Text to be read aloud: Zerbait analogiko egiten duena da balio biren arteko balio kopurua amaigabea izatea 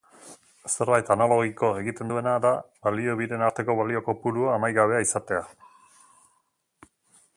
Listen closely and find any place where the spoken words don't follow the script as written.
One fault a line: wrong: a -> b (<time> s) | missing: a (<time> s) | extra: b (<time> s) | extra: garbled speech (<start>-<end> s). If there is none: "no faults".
no faults